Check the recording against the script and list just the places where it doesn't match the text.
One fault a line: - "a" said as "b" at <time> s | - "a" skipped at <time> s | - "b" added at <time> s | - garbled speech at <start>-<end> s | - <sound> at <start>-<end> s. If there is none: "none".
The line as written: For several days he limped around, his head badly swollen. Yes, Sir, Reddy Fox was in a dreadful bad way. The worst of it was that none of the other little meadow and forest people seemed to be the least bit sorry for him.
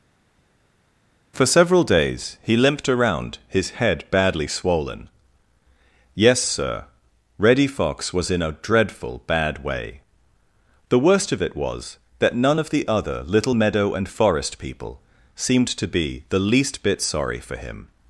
none